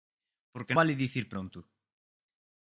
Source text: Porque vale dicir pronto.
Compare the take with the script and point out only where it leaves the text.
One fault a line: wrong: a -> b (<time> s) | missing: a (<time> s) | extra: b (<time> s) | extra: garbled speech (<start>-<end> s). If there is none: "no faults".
no faults